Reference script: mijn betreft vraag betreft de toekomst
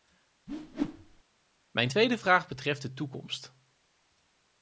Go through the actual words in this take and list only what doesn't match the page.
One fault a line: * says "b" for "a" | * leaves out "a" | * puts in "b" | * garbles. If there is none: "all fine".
* says "tweede" for "betreft"